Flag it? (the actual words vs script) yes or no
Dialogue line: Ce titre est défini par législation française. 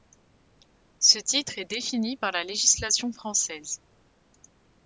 yes